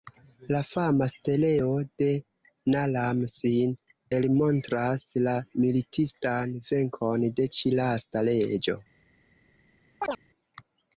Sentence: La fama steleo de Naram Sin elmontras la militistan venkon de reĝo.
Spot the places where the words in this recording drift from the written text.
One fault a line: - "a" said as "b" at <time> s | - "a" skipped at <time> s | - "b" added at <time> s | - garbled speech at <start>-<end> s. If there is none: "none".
- "ĉi lasta" added at 7.6 s